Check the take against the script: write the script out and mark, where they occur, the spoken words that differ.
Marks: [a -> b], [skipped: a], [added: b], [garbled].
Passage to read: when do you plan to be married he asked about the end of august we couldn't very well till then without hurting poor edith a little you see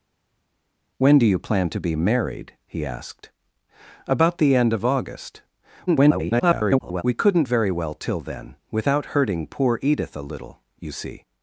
when do you plan to be married he asked about the end of august [garbled] we couldn't very well till then without hurting poor edith a little you see